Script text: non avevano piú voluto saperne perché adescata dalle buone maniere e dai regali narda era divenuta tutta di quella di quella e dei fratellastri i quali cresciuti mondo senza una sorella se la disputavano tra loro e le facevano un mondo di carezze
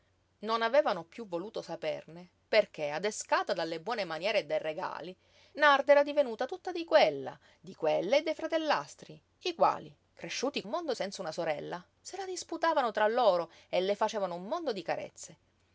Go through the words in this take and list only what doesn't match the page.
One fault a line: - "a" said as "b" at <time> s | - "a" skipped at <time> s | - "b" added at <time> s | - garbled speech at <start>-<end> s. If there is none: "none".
none